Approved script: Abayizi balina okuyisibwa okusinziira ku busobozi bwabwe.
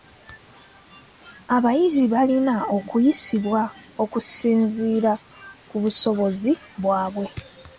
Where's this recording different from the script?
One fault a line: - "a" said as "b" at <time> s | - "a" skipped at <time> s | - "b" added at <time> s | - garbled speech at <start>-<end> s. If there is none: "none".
none